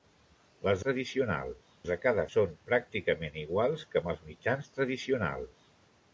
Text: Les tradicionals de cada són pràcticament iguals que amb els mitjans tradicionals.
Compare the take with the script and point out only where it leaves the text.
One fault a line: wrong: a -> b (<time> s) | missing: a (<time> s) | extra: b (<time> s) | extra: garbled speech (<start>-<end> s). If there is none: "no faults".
no faults